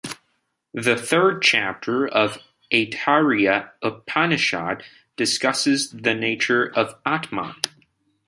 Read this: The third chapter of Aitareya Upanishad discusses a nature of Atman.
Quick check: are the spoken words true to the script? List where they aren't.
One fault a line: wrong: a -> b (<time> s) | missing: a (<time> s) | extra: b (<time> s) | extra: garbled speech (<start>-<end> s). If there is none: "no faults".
wrong: a -> the (5.9 s)